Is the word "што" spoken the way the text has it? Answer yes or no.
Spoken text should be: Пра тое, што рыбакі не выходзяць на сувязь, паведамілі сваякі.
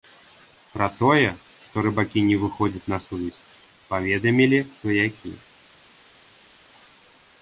yes